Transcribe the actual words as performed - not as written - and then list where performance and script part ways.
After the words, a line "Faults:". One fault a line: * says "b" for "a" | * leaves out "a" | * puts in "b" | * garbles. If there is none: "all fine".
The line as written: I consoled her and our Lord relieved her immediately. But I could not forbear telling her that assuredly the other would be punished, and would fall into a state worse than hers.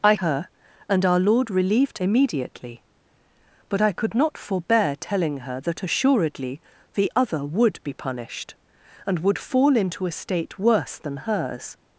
I her and our Lord relieved immediately. But I could not forbear telling her that assuredly the other would be punished, and would fall into a state worse than hers.
Faults:
* leaves out "consoled"
* leaves out "her"